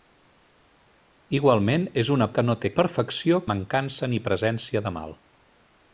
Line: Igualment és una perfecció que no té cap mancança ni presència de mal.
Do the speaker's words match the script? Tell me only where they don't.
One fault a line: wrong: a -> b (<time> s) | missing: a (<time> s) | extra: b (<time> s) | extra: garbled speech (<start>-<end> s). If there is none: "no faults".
missing: perfecció (2.3 s)
wrong: cap -> perfecció (2.8 s)